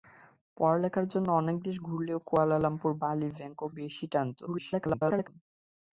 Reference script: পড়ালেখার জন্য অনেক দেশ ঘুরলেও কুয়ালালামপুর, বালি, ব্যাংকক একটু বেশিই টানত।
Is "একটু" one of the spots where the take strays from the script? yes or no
yes